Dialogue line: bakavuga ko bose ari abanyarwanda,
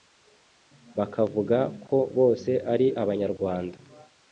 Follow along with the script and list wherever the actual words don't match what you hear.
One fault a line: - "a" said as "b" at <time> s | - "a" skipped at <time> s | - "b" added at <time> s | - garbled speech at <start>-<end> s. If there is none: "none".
none